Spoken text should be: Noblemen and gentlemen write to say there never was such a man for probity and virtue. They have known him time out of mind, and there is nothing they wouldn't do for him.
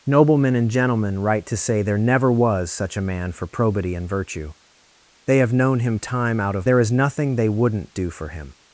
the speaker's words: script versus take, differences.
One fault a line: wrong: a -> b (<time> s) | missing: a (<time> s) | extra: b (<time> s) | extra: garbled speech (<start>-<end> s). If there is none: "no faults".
missing: mind and (6.7 s)